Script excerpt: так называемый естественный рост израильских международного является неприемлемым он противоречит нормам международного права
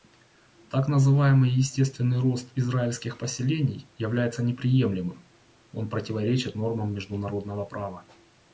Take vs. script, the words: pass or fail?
fail